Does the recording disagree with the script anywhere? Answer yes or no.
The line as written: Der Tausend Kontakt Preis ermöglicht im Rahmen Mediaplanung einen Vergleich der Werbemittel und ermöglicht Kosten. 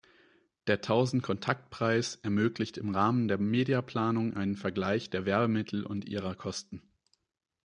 yes